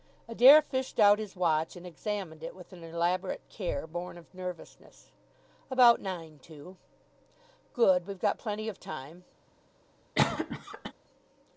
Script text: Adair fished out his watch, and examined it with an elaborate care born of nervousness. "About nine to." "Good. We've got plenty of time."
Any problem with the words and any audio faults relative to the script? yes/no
yes